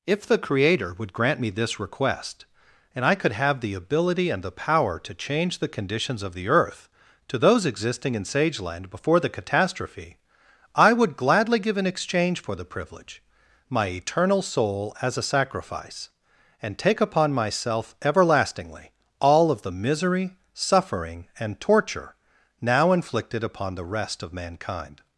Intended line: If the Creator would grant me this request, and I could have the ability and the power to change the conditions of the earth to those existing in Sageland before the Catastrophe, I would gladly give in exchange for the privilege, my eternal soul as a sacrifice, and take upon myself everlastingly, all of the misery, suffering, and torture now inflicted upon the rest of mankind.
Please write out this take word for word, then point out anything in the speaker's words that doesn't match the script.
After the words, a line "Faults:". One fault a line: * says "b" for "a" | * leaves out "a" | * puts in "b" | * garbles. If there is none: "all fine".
If the Creator would grant me this request, and I could have the ability and the power to change the conditions of the earth to those existing in Sageland before the Catastrophe, I would gladly give in exchange for the privilege, my eternal soul as a sacrifice, and take upon myself everlastingly, all of the misery, suffering, and torture now inflicted upon the rest of mankind.
Faults:
all fine